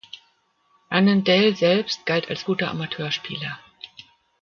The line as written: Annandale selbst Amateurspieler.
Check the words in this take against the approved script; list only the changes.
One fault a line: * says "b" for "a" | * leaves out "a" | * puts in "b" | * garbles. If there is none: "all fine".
* puts in "galt als guter"